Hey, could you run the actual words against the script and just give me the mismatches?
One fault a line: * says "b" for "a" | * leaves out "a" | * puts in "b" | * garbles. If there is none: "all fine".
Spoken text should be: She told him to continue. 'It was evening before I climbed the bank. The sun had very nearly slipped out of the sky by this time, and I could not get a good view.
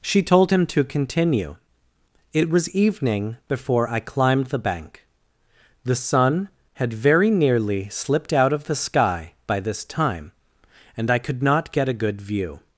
all fine